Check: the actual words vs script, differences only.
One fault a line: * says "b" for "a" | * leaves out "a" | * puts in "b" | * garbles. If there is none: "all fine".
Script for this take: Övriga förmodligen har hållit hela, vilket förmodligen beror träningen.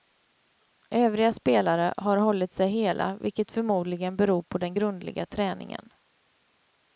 * says "spelare" for "förmodligen"
* puts in "sig"
* puts in "på den grundliga"